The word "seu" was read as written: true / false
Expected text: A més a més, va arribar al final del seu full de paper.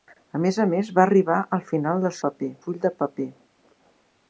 false